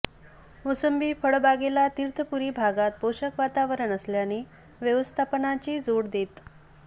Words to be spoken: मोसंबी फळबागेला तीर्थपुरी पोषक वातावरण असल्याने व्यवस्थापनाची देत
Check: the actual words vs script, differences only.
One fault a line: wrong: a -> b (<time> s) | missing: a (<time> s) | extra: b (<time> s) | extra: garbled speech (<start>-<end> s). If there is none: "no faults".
extra: भागात (2.5 s)
extra: जोड (5.8 s)